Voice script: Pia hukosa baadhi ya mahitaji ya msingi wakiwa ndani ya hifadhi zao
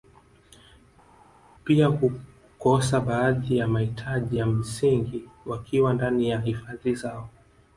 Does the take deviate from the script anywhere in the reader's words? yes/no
no